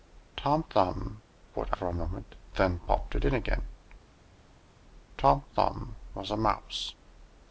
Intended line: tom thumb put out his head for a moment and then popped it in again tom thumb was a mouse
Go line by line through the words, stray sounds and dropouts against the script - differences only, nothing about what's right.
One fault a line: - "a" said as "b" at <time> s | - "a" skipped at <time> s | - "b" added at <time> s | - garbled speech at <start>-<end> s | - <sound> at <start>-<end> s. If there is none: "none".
- "out his head" skipped at 1.7 s
- "and" skipped at 2.4 s